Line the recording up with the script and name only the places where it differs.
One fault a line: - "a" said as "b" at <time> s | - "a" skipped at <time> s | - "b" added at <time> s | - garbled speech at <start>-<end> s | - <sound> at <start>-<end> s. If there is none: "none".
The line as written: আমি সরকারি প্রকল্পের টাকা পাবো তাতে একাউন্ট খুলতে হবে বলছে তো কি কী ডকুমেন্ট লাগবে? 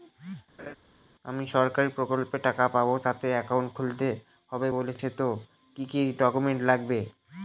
- laugh at 0.6-0.8 s